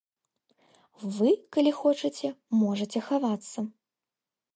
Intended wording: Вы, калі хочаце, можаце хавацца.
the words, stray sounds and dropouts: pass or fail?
pass